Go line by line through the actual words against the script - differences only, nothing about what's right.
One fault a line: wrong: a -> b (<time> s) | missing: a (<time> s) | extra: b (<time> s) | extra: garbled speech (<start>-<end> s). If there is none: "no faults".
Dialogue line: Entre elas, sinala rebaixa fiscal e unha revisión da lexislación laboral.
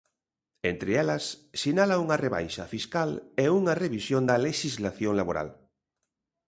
extra: unha (2.0 s)